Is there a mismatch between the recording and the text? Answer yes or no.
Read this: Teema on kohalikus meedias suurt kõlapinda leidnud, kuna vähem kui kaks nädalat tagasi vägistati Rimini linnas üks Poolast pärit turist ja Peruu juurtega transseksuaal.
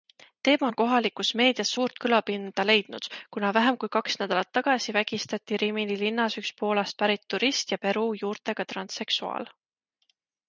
no